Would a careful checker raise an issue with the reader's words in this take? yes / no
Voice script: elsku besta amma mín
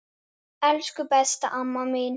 no